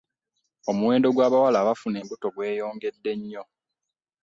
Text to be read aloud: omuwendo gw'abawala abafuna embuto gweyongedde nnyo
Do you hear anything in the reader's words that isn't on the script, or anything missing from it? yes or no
no